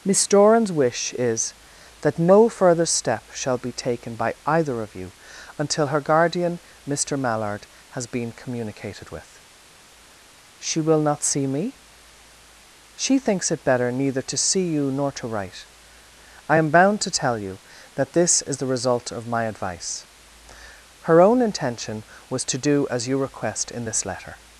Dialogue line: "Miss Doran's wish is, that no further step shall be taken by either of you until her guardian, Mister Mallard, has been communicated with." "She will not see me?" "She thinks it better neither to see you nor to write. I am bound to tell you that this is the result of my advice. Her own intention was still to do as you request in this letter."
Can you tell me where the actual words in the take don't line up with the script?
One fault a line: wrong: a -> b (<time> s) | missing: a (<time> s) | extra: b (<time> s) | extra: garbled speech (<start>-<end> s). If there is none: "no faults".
missing: still (22.5 s)